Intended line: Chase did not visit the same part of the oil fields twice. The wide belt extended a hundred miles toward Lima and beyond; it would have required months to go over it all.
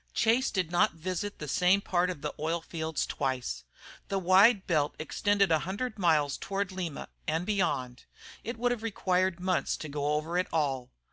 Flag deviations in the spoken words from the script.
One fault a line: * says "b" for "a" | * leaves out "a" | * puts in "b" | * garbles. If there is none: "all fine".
all fine